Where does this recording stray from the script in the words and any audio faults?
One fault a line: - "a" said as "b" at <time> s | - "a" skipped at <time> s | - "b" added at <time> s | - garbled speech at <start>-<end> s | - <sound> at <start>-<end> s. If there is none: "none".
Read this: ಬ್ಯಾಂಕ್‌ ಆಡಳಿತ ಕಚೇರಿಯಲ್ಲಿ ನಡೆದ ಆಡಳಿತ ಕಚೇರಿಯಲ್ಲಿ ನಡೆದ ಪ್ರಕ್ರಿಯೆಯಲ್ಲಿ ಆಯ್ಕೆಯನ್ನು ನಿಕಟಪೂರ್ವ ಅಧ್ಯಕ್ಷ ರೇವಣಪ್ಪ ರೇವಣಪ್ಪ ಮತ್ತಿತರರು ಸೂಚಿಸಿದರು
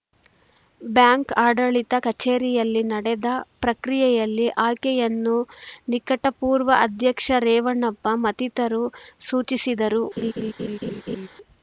- "ಆಡಳಿತ ಕಚೇರಿಯಲ್ಲಿ ನಡೆದ" skipped at 3.3 s
- "ರೇವಣಪ್ಪ" skipped at 8.2 s
- laugh at 10.2-11.3 s